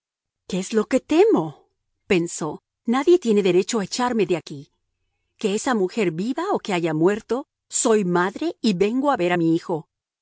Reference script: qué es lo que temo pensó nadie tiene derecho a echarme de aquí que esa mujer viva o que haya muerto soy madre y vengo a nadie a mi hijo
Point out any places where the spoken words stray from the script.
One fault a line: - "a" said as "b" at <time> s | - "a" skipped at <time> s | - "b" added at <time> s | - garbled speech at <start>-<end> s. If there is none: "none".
- "nadie" said as "ver" at 9.2 s